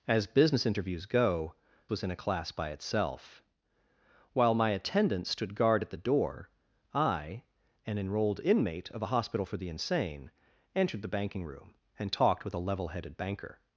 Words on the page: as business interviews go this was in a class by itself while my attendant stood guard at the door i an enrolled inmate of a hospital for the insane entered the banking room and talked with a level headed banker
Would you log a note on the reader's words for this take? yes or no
yes